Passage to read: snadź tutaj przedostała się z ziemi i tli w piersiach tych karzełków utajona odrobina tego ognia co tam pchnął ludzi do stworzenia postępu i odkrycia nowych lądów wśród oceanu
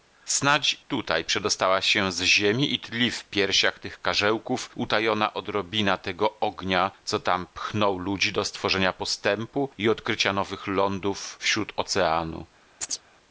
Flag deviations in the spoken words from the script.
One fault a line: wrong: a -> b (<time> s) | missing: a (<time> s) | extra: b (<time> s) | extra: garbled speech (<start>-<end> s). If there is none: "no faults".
no faults